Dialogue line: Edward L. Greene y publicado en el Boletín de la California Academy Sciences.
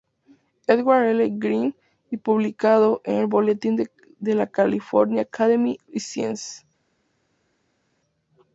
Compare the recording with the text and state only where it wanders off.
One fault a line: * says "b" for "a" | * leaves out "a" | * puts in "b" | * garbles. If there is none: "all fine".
all fine